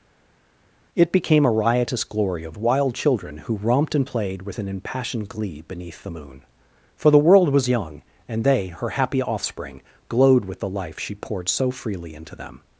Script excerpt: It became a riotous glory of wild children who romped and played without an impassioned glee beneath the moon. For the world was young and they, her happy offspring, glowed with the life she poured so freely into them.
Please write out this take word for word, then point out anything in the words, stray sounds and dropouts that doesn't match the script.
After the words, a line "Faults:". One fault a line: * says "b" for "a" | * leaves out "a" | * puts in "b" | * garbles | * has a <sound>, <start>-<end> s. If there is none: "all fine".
It became a riotous glory of wild children who romped and played with an impassioned glee beneath the moon. For the world was young and they, her happy offspring, glowed with the life she poured so freely into them.
Faults:
* says "with" for "without"